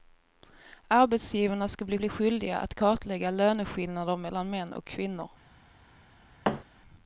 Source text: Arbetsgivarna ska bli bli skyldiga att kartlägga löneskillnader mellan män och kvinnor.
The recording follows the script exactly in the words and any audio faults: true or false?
false